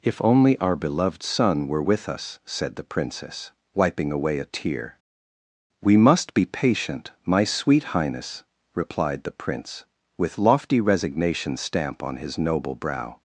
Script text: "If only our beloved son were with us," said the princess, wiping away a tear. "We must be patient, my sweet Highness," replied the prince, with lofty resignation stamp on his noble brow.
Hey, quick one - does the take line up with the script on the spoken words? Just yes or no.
yes